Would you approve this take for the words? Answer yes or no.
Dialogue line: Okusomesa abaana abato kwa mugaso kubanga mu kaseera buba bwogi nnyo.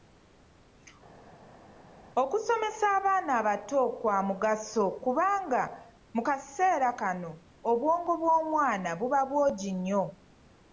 no